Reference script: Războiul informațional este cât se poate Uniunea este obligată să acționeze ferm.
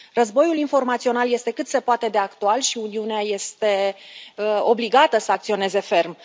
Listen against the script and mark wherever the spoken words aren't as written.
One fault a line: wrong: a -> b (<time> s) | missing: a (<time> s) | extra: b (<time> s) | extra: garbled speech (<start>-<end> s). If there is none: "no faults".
extra: de actual și (2.1 s)